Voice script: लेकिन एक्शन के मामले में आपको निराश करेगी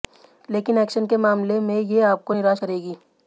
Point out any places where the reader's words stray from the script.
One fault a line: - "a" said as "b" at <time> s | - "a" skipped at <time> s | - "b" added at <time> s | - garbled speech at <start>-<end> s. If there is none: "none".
- "ये" added at 1.8 s